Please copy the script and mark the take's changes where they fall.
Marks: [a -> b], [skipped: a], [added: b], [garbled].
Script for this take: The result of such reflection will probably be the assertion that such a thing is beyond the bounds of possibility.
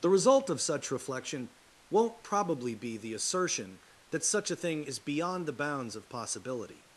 The result of such reflection [will -> won't] probably be the assertion that such a thing is beyond the bounds of possibility.